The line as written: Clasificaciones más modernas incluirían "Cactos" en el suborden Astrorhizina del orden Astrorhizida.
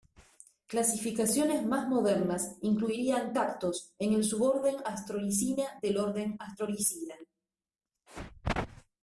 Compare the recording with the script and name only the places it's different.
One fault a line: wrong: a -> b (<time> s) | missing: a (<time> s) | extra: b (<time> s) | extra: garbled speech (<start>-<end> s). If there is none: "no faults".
no faults